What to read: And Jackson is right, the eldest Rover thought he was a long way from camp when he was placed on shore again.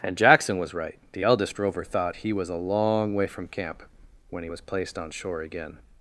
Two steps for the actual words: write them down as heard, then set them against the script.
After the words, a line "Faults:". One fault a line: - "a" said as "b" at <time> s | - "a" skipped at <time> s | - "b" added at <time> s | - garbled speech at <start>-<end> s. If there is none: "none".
And Jackson was right, the eldest Rover thought he was a long way from camp when he was placed on shore again.
Faults:
- "is" said as "was" at 0.6 s